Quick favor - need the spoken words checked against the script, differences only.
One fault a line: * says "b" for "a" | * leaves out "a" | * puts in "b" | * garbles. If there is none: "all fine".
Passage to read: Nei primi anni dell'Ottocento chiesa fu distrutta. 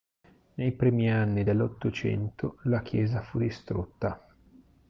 * puts in "la"